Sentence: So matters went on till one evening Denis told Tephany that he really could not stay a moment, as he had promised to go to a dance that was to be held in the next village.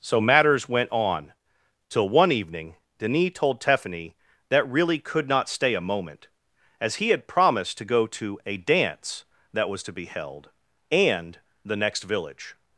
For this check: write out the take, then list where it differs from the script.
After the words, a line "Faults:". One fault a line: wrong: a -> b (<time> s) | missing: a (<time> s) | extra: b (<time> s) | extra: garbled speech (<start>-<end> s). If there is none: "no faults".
So matters went on till one evening Denis told Tephany that really could not stay a moment, as he had promised to go to a dance that was to be held and the next village.
Faults:
missing: he (4.7 s)
wrong: in -> and (10.9 s)